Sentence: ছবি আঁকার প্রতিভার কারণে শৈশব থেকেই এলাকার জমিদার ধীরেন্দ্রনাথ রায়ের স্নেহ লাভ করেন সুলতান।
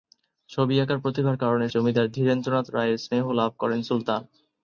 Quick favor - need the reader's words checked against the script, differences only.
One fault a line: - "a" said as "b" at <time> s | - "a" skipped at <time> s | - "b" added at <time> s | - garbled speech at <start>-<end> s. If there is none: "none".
- "শৈশব থেকেই এলাকার" skipped at 1.6 s